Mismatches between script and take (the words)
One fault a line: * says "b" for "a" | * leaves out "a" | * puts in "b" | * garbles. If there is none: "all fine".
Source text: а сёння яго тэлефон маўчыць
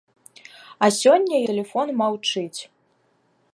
* leaves out "яго"